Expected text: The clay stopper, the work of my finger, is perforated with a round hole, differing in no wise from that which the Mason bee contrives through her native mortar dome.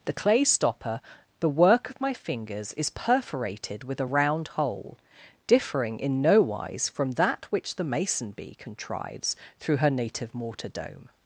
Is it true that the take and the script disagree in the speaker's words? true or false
true